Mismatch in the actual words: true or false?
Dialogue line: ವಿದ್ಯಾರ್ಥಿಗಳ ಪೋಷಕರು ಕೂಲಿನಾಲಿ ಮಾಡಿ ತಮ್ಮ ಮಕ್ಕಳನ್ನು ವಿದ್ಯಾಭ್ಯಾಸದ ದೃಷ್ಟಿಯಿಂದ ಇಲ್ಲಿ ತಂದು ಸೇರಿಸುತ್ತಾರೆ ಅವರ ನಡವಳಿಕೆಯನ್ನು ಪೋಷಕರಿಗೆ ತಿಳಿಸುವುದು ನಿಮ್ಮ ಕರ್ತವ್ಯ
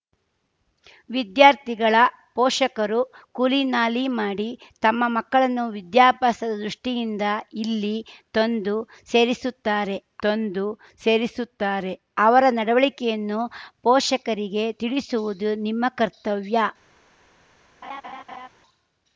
true